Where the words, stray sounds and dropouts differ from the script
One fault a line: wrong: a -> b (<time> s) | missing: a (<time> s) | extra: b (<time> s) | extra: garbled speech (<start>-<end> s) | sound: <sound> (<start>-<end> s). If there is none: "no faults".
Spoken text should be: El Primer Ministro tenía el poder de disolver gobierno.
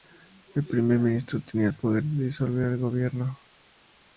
extra: el (2.6 s)